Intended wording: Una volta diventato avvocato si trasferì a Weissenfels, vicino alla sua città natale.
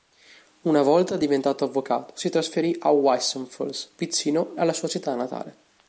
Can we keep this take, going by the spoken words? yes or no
yes